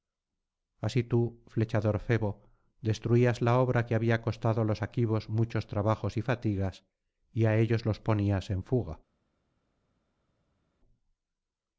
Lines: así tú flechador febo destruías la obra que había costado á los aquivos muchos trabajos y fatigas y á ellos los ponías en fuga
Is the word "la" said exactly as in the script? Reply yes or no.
yes